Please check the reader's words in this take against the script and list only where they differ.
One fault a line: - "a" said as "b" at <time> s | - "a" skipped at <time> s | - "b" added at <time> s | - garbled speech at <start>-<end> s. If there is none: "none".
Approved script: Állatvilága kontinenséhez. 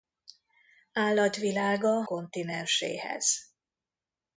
none